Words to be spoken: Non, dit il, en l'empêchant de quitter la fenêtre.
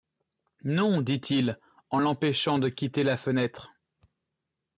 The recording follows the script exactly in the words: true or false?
true